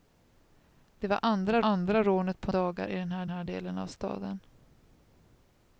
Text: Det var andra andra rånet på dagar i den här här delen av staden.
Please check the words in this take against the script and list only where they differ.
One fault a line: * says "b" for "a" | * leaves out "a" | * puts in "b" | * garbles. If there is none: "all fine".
all fine